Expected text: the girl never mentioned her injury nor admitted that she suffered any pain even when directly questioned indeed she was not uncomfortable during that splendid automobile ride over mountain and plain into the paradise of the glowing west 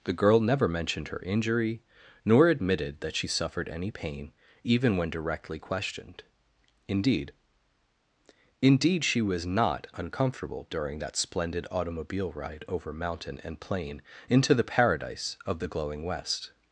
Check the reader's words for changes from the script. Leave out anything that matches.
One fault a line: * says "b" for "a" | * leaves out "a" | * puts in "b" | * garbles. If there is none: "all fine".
* puts in "indeed"